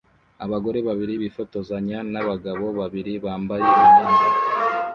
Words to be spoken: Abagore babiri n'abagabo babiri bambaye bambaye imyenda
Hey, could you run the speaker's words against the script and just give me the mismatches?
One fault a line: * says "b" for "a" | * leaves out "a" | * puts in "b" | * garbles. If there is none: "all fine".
* puts in "bifotozanya"
* leaves out "bambaye"